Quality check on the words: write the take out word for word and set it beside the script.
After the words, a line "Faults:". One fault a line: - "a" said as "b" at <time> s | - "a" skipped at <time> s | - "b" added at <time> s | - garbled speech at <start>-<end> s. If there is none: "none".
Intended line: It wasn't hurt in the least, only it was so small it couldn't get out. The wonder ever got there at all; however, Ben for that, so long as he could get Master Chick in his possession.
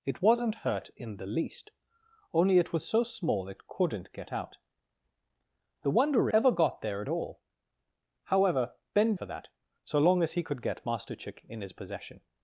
It wasn't hurt in the least, only it was so small it couldn't get out. The wonder ever got there at all; however, Ben for that, so long as he could get Master Chick in his possession.
Faults:
none